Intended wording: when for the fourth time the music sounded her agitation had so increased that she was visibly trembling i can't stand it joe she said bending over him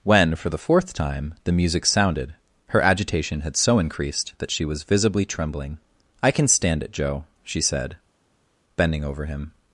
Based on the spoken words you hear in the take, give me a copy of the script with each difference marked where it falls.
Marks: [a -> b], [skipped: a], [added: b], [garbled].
when for the fourth time the music sounded her agitation had so increased that she was visibly trembling i [can't -> can] stand it joe she said bending over him